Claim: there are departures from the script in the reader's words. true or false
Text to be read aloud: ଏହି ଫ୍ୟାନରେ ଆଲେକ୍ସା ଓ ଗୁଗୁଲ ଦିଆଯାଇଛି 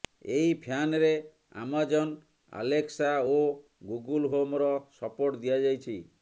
true